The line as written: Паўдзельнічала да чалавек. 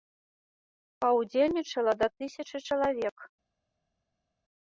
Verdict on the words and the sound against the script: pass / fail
fail